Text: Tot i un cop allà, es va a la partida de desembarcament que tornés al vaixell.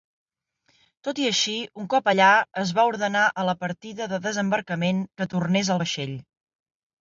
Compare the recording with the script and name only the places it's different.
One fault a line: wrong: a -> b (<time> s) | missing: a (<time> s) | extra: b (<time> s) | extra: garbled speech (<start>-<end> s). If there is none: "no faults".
extra: així (1.3 s)
extra: ordenar (2.9 s)